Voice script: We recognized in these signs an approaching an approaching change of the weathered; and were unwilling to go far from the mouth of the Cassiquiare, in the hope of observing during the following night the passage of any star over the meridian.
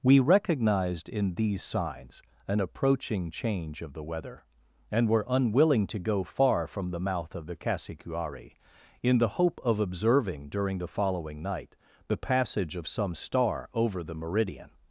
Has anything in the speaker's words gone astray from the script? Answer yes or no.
yes